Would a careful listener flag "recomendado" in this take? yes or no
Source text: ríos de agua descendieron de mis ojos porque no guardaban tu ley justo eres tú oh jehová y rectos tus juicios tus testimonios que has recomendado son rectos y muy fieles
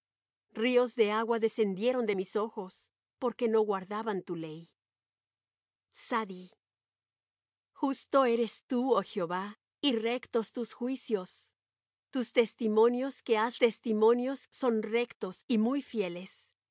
yes